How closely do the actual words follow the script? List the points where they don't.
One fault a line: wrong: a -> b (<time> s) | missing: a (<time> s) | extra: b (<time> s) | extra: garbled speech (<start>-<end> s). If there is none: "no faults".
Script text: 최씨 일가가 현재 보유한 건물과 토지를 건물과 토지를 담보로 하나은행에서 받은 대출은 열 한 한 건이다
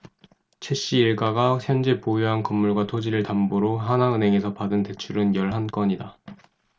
missing: 건물과 토지를 (3.2 s)
missing: 한 (5.7 s)